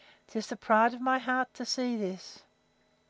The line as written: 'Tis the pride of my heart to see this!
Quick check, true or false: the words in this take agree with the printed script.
true